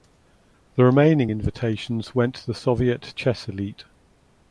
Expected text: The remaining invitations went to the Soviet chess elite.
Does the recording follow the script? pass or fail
pass